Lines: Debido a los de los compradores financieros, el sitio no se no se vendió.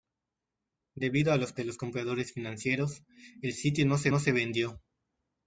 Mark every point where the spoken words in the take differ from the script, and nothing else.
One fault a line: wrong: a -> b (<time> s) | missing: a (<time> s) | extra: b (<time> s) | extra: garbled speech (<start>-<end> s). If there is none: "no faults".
no faults